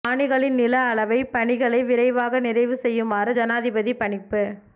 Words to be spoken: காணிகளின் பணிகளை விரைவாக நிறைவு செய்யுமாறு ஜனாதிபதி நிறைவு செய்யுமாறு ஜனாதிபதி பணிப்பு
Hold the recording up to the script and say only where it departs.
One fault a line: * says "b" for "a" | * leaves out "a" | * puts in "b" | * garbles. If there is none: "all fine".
* puts in "நில அளவைப்"
* leaves out "நிறைவு செய்யுமாறு ஜனாதிபதி"